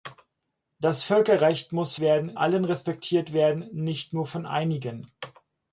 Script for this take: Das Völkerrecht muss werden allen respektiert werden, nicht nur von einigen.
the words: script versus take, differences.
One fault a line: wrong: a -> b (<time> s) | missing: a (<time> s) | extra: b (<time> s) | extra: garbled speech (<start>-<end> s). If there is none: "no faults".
no faults